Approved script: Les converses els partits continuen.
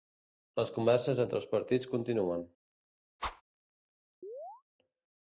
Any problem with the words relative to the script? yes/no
yes